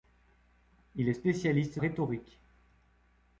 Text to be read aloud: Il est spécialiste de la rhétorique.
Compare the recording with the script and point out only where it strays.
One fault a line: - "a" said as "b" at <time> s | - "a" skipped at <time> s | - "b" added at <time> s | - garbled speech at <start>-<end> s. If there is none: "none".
- "de la" skipped at 1.8 s